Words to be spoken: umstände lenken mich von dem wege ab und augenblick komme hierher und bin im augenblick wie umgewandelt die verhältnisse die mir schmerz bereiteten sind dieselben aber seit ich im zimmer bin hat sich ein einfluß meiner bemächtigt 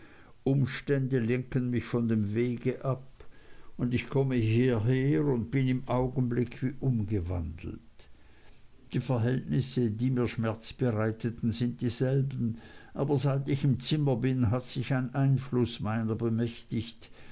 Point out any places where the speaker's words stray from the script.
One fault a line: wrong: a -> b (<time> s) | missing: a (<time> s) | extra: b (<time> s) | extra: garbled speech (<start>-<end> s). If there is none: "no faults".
wrong: augenblick -> ich (3.9 s)